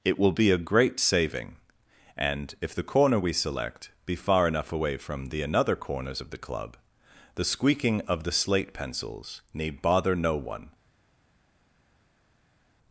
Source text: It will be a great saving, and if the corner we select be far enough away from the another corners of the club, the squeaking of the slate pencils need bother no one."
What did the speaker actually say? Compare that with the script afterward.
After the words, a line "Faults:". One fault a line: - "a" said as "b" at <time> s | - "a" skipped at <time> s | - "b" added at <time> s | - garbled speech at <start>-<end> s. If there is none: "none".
It will be a great saving, and if the corner we select be far enough away from the another corners of the club, the squeaking of the slate pencils need bother no one."
Faults:
none